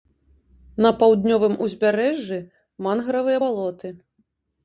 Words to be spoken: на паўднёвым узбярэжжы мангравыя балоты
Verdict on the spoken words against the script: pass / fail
pass